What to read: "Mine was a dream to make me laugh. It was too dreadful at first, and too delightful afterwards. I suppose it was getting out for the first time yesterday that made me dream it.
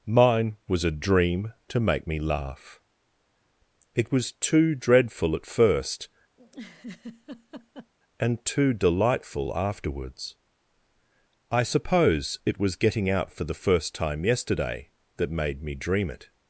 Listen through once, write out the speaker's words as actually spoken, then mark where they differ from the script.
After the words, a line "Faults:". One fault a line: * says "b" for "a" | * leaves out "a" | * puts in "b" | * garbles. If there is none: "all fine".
"Mine was a dream to make me laugh. It was too dreadful at first, and too delightful afterwards. I suppose it was getting out for the first time yesterday that made me dream it.
Faults:
all fine